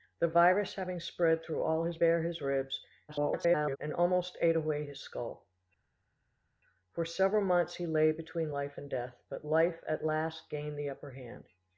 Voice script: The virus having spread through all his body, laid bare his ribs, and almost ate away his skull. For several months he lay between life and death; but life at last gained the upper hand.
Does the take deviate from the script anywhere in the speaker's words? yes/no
yes